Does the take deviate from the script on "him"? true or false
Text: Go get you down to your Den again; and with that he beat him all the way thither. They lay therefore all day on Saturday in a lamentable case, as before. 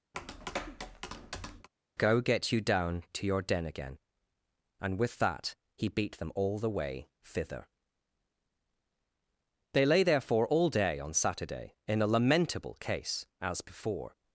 true